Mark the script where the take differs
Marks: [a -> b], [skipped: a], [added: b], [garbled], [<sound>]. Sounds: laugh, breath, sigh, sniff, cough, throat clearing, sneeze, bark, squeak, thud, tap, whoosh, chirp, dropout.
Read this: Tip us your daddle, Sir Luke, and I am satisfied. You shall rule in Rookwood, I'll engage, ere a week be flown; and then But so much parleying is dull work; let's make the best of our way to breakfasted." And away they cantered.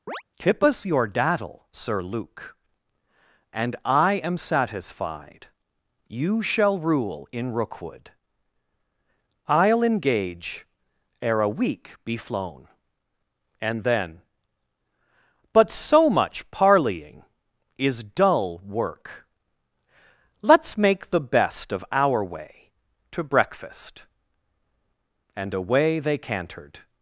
[chirp] Tip us your daddle, Sir Luke, and I am satisfied. You shall rule in Rookwood, I'll engage, ere a week be flown; and then But so much parleying is dull work; let's make the best of our way to [breakfasted." -> breakfast] And away they cantered.